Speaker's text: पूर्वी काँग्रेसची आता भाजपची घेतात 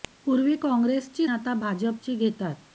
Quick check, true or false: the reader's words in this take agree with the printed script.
true